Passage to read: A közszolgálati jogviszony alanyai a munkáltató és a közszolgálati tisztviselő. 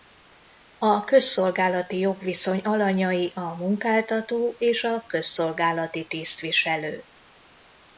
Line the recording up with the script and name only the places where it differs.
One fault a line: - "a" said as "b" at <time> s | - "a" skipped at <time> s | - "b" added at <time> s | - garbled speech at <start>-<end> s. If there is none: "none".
none